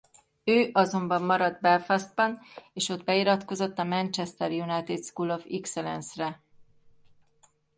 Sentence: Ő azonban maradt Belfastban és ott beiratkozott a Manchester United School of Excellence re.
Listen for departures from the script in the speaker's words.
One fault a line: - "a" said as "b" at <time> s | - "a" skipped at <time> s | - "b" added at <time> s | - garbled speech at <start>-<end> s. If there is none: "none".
none